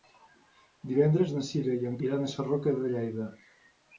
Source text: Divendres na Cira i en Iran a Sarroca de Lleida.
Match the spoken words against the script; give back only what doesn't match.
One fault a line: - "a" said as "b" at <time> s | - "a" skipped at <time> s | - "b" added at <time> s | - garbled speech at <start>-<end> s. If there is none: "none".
none